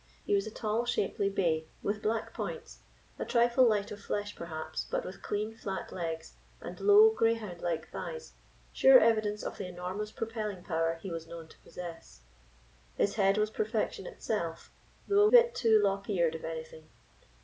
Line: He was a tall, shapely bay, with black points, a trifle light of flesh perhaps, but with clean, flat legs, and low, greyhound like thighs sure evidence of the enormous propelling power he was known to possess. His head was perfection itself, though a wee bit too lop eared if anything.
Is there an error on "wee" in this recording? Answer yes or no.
yes